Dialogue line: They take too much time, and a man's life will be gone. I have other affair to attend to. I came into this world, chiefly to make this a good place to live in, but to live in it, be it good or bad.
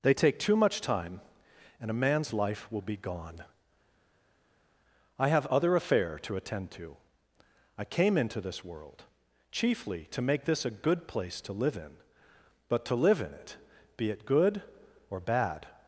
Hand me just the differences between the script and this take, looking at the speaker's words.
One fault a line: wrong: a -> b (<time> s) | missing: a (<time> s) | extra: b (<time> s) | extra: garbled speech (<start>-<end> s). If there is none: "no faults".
no faults